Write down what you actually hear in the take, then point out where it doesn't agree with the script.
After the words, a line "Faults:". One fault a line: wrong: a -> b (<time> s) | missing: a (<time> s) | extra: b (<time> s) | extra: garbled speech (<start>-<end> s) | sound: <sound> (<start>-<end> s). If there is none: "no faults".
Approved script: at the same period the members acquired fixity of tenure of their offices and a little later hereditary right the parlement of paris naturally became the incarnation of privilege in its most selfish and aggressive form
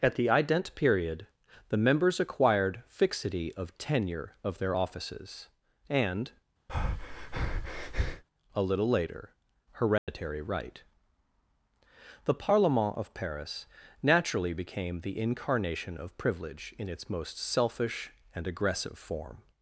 at the ident period the members acquired fixity of tenure of their offices and a little later hereditary right the parlement of paris naturally became the incarnation of privilege in its most selfish and aggressive form
Faults:
wrong: same -> ident (0.3 s)
sound: breath (6.7-8.2 s)
sound: dropout (10.0-10.1 s)